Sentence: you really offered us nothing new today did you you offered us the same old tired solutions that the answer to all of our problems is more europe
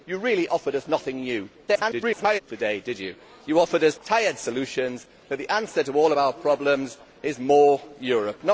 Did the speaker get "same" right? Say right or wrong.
wrong